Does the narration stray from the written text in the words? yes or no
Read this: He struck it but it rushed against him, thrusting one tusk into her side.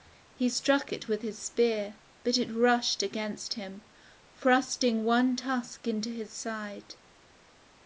yes